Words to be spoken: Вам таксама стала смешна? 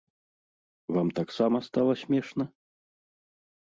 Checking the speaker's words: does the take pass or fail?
pass